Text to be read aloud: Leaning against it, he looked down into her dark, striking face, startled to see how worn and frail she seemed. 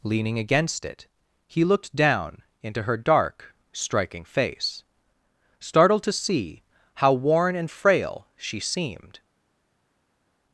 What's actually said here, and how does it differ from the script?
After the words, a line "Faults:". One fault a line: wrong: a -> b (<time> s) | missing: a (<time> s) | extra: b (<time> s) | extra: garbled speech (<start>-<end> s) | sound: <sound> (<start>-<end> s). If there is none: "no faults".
Leaning against it, he looked down into her dark, striking face, startled to see how worn and frail she seemed.
Faults:
no faults